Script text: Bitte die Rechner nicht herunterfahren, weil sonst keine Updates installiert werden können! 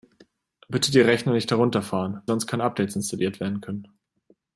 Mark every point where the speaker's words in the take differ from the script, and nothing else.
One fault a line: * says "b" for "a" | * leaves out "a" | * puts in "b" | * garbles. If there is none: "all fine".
* leaves out "weil"